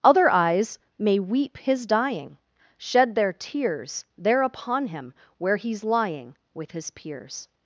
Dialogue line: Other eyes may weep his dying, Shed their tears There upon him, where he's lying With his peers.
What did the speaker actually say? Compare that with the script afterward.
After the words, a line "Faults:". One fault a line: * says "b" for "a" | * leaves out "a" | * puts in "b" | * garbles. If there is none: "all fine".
Other eyes may weep his dying, Shed their tears There upon him, where he's lying With his peers.
Faults:
all fine